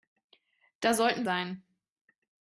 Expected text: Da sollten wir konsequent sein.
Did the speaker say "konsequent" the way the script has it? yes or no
no